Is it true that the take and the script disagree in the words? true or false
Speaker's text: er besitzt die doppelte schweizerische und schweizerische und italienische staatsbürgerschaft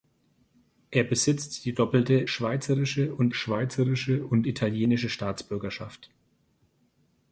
false